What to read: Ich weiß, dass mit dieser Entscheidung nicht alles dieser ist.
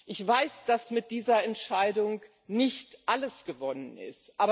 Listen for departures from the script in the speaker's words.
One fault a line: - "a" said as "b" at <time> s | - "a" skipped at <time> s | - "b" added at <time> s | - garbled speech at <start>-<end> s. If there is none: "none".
- "dieser" said as "gewonnen" at 3.4 s